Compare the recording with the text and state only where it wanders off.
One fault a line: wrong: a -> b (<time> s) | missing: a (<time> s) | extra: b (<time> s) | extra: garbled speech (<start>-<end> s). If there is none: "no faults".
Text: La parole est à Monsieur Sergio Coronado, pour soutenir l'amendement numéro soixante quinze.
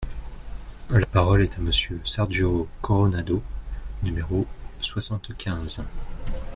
missing: pour soutenir l'amendement (3.4 s)